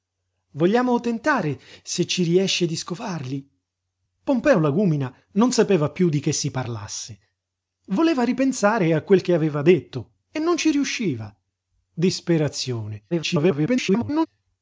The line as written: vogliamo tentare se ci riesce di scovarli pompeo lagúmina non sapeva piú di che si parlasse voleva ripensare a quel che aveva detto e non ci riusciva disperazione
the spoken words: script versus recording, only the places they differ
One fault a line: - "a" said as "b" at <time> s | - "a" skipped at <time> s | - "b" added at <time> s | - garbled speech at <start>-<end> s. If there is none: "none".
- garbled speech at 13.1-14.3 s